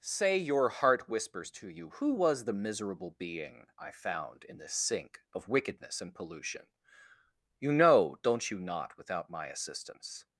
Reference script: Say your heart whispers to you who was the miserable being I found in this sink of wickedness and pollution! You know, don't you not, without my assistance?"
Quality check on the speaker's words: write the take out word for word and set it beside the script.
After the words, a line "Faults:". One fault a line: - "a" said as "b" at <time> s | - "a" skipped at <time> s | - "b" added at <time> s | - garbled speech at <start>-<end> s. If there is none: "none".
Say your heart whispers to you who was the miserable being I found in this sink of wickedness and pollution! You know, don't you not, without my assistance?"
Faults:
none